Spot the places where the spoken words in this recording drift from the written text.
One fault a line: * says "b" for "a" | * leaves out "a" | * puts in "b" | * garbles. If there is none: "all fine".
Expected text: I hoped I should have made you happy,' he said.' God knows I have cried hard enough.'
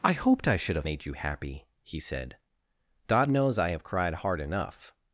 all fine